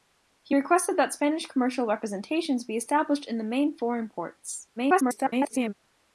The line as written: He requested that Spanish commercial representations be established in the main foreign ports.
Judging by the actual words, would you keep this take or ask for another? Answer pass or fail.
fail